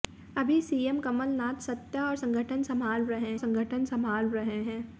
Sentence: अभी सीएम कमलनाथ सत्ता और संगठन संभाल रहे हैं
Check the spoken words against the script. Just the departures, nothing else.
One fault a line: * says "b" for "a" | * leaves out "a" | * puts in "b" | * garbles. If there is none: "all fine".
* puts in "संगठन संभाल रहे"